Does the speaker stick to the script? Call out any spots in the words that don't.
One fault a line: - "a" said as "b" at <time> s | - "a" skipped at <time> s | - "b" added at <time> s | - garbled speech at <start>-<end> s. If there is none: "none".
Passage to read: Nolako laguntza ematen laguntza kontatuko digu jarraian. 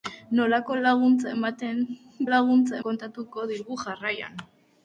none